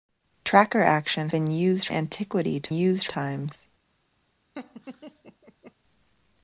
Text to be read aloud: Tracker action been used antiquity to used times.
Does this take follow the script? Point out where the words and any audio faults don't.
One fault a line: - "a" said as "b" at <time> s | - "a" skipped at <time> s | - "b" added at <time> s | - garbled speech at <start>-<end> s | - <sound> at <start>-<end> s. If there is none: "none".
- laugh at 4.5-5.7 s